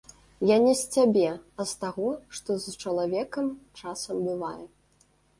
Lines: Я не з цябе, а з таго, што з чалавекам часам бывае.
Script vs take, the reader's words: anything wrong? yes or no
no